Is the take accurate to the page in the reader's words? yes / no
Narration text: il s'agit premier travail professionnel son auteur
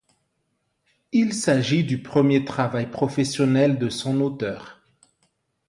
no